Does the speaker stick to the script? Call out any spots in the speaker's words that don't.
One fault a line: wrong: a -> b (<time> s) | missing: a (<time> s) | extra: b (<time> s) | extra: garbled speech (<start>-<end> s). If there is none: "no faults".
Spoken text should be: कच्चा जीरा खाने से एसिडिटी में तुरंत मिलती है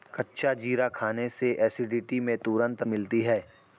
no faults